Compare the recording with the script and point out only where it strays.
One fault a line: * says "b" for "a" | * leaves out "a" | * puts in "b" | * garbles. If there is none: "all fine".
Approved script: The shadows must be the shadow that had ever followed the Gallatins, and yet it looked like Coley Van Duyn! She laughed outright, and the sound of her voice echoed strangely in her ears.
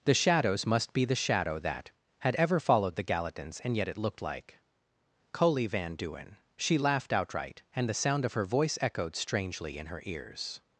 all fine